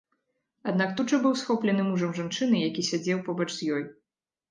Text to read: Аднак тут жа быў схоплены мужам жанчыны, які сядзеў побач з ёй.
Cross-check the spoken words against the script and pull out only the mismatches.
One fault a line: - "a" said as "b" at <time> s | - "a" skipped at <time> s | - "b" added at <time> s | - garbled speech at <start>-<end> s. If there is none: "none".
none